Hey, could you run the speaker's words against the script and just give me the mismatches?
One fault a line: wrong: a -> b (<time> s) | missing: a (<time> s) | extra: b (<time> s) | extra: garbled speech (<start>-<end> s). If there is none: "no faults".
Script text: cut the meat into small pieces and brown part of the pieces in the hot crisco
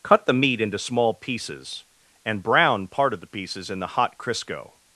no faults